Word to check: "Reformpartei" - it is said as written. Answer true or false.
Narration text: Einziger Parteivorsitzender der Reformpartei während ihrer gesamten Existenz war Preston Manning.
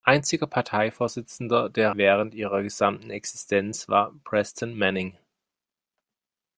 false